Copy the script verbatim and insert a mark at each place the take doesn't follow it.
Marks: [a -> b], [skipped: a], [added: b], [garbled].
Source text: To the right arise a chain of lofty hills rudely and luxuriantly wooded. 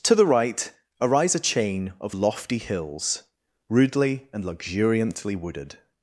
To the right arise a chain of lofty hills rudely and luxuriantly wooded.